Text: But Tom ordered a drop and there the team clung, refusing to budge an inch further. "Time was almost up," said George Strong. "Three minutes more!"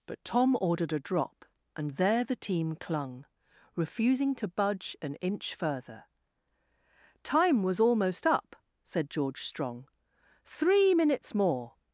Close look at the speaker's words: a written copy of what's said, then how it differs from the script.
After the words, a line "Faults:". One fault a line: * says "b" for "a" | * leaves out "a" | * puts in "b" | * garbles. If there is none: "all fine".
But Tom ordered a drop and there the team clung, refusing to budge an inch further. "Time was almost up," said George Strong. "Three minutes more!"
Faults:
all fine